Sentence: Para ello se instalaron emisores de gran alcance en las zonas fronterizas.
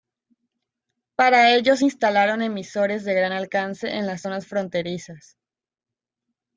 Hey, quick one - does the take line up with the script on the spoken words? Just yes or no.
yes